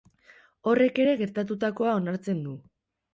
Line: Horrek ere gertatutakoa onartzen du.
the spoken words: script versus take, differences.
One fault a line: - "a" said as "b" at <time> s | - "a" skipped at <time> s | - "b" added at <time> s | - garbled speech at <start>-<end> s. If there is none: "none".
none